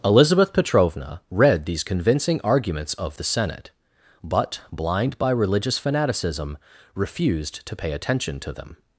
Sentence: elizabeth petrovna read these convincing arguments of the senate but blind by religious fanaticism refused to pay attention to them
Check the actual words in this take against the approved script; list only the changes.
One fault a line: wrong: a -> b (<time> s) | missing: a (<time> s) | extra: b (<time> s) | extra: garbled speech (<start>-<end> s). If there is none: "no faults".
no faults